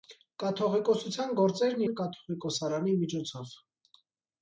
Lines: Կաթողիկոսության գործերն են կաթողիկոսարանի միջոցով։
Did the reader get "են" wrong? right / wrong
right